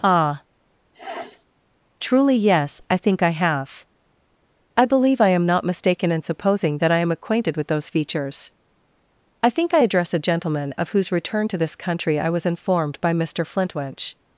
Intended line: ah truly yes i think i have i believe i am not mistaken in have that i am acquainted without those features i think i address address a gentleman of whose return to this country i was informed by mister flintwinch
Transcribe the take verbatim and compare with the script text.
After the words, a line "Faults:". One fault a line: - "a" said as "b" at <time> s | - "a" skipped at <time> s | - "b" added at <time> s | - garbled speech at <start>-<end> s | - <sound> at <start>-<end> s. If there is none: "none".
ah truly yes i think i have i believe i am not mistaken in supposing that i am acquainted with those features i think i address a gentleman of whose return to this country i was informed by mister flintwinch
Faults:
- sniff at 0.9-1.5 s
- "have" said as "supposing" at 6.2 s
- "without" said as "with" at 7.6 s
- "address" skipped at 10.1 s